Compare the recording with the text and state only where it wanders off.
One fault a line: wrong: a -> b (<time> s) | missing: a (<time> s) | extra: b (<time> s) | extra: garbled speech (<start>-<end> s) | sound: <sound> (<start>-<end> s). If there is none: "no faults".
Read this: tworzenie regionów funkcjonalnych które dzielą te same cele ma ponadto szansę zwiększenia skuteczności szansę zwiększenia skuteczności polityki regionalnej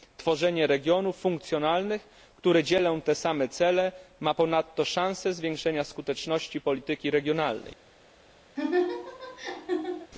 missing: szansę zwiększenia skuteczności (6.6 s)
sound: laugh (8.6-10.1 s)